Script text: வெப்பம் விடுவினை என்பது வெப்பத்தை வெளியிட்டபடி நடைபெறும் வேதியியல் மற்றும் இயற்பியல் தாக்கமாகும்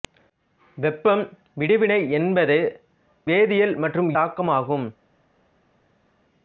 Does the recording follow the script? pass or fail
fail